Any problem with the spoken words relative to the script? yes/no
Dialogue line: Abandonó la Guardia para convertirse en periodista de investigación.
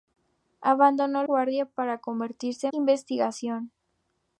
yes